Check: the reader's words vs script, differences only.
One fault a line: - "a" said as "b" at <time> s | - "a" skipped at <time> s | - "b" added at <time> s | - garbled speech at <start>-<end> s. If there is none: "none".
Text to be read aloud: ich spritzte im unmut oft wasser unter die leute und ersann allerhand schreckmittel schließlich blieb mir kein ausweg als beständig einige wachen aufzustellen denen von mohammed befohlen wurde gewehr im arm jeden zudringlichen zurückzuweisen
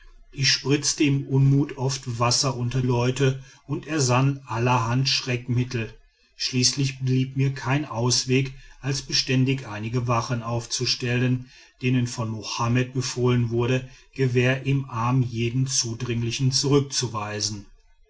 - "die" skipped at 2.8 s